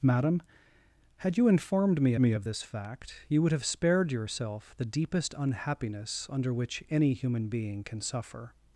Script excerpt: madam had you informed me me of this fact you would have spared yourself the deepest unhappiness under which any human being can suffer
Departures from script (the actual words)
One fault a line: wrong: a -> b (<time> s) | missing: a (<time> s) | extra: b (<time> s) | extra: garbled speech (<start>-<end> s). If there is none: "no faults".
no faults